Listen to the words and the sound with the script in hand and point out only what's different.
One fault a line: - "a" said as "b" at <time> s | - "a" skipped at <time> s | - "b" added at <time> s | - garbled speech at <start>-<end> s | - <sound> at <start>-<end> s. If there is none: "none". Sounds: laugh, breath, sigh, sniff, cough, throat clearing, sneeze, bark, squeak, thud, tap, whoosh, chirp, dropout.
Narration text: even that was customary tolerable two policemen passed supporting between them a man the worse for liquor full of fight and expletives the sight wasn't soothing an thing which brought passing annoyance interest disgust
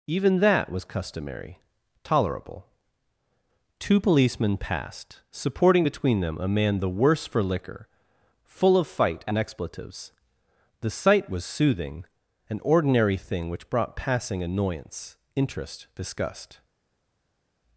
- "wasn't" said as "was" at 11.3 s
- "ordinary" added at 12.6 s